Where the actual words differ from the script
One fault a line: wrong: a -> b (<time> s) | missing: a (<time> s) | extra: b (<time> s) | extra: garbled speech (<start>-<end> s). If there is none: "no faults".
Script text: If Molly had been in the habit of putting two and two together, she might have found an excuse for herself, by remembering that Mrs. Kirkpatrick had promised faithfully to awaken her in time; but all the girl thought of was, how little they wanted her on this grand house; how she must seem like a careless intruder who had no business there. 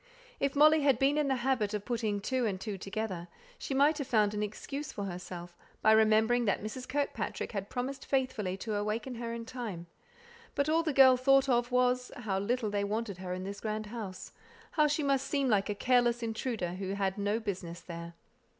wrong: on -> in (13.3 s)